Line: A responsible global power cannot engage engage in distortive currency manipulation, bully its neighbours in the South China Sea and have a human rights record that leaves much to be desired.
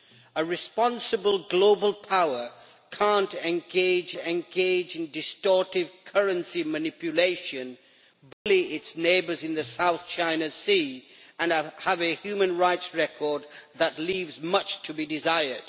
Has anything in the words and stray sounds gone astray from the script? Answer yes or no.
yes